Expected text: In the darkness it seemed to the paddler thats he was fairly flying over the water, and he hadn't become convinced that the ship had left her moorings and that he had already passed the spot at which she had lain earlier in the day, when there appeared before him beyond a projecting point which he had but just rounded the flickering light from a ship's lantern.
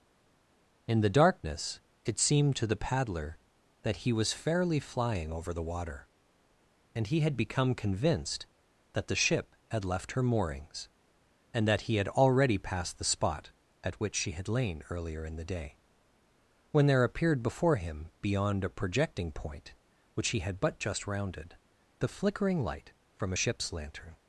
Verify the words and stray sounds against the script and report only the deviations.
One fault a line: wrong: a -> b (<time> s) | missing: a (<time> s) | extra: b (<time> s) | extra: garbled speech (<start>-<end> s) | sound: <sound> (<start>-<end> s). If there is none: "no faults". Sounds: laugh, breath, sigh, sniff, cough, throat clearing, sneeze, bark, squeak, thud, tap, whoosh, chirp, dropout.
wrong: thats -> that (3.8 s)
wrong: hadn't -> had (7.2 s)